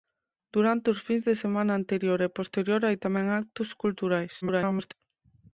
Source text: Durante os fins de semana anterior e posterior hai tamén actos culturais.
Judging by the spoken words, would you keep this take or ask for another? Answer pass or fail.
fail